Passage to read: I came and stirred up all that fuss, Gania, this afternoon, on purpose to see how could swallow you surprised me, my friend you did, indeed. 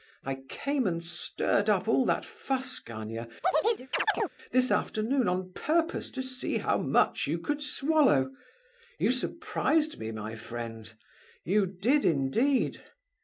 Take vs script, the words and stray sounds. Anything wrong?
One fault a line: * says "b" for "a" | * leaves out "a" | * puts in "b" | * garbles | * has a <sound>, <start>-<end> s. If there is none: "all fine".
* has a chirp, 3.4-4.3 s
* puts in "much you"